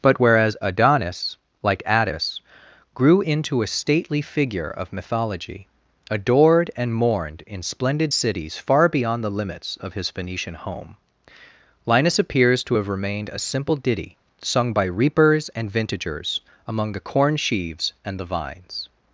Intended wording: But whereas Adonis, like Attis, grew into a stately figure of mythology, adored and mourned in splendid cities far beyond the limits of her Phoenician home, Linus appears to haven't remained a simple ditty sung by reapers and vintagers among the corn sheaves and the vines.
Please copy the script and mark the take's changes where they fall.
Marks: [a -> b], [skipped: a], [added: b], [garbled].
But whereas Adonis, like Attis, grew into a stately figure of mythology, adored and mourned in splendid cities far beyond the limits of [her -> his] Phoenician home, Linus appears to [haven't -> have] remained a simple ditty sung by reapers and vintagers among the corn sheaves and the vines.